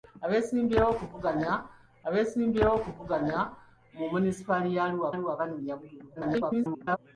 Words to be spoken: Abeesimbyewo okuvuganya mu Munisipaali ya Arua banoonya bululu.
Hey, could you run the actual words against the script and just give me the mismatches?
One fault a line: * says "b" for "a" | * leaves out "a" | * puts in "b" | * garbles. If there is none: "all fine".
* puts in "abeesimbyewo okuvuganya"
* puts in "Arua"
* garbles